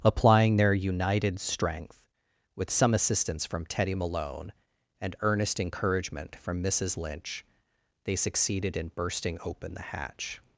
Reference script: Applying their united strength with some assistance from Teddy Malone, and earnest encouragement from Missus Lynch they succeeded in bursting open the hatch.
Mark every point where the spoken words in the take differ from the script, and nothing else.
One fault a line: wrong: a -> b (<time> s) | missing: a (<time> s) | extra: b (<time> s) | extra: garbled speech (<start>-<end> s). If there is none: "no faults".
no faults